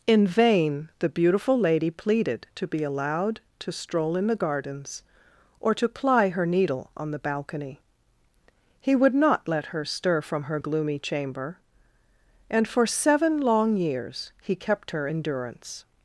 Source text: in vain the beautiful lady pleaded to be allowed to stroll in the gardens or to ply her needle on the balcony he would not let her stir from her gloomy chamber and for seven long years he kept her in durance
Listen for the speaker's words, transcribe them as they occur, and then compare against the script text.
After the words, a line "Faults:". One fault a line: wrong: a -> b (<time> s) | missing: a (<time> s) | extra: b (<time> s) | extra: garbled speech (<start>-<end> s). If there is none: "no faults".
in vain the beautiful lady pleaded to be allowed to stroll in the gardens or to ply her needle on the balcony he would not let her stir from her gloomy chamber and for seven long years he kept her in durance
Faults:
no faults